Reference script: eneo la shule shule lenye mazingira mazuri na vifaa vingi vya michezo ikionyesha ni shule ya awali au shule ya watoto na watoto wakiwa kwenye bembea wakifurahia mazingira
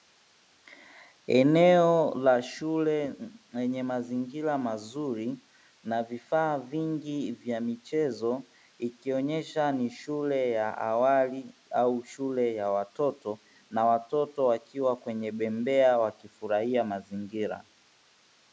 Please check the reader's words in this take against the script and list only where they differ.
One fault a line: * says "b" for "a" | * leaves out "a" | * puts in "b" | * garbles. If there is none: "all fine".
* leaves out "shule"